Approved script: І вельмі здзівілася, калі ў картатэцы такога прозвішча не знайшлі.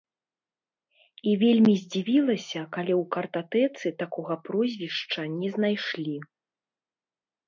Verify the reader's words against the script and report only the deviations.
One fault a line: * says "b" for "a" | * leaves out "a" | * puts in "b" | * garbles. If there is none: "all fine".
all fine